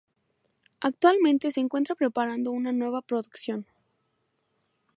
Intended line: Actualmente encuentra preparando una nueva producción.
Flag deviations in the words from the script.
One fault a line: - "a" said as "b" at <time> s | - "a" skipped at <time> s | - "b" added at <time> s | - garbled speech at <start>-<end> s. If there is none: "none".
- "se" added at 1.5 s